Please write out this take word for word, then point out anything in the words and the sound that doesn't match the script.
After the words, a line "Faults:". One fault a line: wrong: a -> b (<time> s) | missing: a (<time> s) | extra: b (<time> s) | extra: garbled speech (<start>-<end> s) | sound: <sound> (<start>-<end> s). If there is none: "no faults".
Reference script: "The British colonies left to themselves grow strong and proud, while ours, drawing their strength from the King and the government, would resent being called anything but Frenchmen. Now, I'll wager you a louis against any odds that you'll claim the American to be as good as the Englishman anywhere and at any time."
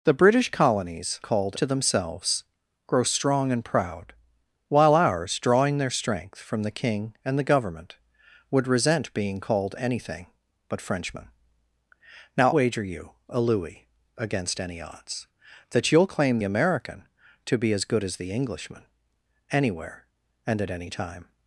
"The British colonies called to themselves grow strong and proud, while ours, drawing their strength from the King and the government, would resent being called anything but Frenchmen. Now, Wager you a louis against any odds that you'll claim American to be as good as the Englishman anywhere and at any time."
Faults:
wrong: left -> called (1.2 s)
missing: I'll (12.5 s)
missing: the (16.4 s)